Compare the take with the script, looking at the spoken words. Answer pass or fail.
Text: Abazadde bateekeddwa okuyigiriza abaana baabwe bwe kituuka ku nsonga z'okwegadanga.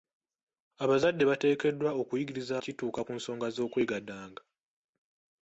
fail